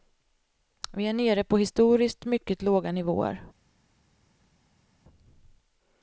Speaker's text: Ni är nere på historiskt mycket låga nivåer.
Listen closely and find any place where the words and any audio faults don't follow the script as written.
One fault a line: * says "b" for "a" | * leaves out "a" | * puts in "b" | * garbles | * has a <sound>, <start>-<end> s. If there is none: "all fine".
* says "Vi" for "Ni"